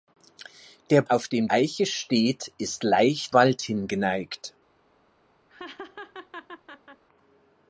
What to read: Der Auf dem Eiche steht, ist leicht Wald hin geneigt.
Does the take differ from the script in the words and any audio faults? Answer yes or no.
yes